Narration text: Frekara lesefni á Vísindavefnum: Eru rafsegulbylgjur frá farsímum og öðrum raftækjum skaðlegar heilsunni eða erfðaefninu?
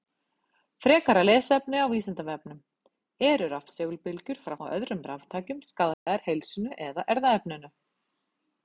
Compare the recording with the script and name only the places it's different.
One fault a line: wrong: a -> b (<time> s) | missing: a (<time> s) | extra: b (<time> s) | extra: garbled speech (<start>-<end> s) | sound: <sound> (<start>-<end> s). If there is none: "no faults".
missing: farsímum (4.6 s)
sound: dropout (5.9-6.1 s)